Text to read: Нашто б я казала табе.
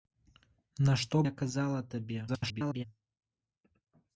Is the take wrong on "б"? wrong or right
wrong